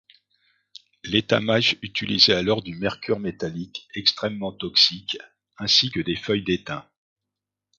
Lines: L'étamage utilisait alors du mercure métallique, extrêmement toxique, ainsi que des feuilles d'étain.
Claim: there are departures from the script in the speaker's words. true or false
false